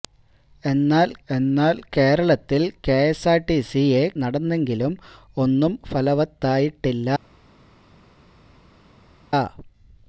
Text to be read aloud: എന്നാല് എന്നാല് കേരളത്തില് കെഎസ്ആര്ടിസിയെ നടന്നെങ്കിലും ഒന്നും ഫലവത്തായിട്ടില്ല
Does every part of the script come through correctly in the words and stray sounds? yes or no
yes